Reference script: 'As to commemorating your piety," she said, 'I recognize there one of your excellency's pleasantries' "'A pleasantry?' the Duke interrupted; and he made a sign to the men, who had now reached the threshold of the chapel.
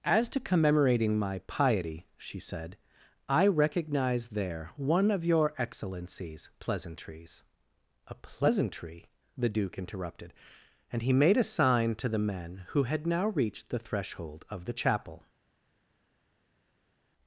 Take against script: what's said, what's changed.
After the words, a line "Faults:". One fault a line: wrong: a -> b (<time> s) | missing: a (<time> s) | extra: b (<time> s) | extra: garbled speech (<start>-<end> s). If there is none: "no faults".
'As to commemorating my piety," she said, 'I recognize there one of your excellency's pleasantries' "'A pleasantry?' the Duke interrupted; and he made a sign to the men, who had now reached the threshold of the chapel.
Faults:
wrong: your -> my (1.2 s)